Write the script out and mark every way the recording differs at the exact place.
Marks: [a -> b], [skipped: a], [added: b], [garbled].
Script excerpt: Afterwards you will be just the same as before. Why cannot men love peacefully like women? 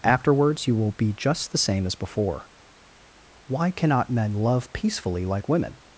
Afterwards you will be just the same as before. Why cannot men love peacefully like women?